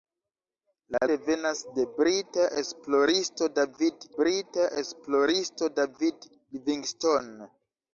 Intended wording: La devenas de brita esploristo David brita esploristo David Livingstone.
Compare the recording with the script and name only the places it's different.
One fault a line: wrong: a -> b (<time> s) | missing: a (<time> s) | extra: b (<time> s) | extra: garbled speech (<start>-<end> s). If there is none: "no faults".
no faults